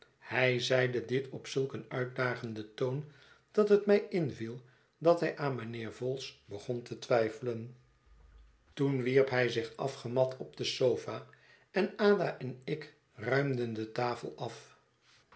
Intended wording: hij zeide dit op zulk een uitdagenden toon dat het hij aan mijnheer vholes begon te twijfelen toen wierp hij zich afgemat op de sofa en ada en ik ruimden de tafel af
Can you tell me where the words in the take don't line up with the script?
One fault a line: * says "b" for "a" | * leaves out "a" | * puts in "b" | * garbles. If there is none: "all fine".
* puts in "mij inviel dat"